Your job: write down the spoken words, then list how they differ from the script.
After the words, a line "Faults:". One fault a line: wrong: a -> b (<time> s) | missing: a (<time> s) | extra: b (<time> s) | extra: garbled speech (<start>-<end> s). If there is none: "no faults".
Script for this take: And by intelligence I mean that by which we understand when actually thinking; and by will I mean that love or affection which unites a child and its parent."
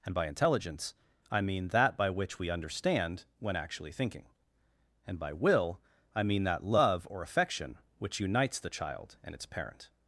And by intelligence I mean that by which we understand when actually thinking; and by will I mean that love or affection which unites the child and its parent."
Faults:
wrong: a -> the (8.6 s)